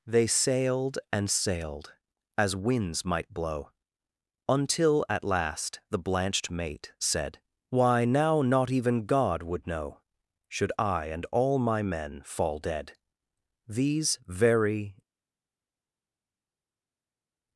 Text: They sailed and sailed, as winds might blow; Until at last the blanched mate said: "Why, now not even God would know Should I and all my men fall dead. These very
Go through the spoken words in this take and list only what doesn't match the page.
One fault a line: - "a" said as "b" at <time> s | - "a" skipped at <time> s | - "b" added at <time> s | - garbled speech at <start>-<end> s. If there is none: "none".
none